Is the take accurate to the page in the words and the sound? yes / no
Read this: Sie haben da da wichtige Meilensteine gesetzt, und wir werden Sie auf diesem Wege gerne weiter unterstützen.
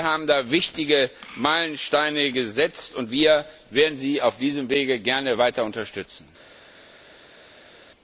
no